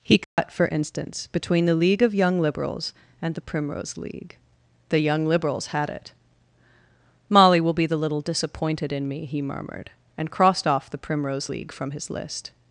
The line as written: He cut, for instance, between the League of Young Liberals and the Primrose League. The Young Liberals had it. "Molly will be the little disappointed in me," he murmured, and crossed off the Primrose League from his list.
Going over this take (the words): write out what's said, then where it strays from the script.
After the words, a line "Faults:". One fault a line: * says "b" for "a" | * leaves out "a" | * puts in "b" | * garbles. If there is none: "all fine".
He cut, for instance, between the League of Young Liberals and the Primrose League. The Young Liberals had it. "Molly will be the little disappointed in me," he murmured, and crossed off the Primrose League from his list.
Faults:
all fine